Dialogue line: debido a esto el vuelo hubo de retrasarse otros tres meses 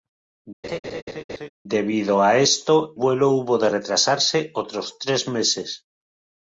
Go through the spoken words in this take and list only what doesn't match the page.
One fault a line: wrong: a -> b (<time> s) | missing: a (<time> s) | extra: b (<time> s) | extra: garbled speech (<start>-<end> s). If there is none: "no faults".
missing: el (3.0 s)